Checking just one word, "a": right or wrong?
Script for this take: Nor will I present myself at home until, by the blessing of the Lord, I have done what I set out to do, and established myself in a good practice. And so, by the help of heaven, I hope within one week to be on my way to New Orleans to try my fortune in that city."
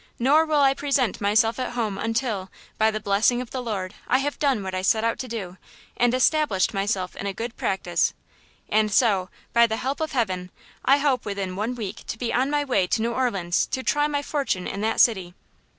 right